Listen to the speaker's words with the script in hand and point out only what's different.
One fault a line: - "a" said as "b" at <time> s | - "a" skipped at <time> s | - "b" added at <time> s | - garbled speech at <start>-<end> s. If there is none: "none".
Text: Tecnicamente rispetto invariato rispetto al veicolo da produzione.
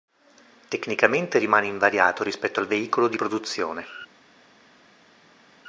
- "rispetto" said as "rimane" at 1.4 s
- "da" said as "di" at 3.1 s